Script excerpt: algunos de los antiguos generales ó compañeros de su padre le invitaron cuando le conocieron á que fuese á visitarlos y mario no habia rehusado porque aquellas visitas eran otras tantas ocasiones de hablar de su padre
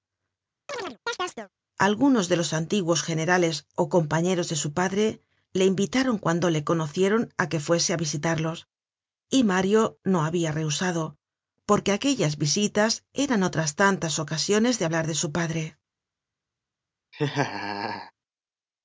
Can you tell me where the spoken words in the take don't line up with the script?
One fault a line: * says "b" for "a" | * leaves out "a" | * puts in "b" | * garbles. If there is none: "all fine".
all fine